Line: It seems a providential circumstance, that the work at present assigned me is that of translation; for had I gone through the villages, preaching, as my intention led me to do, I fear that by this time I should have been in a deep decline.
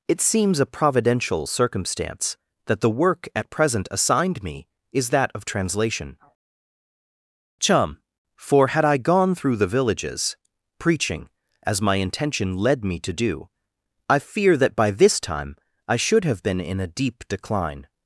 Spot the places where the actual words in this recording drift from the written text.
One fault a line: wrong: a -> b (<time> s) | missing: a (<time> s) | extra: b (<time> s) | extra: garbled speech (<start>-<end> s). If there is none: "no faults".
extra: chum (7.6 s)